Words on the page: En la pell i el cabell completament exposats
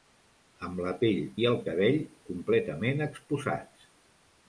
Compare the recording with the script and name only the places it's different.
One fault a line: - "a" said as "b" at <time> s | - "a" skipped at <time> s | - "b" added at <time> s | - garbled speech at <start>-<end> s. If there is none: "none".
- "En" said as "Amb" at 0.7 s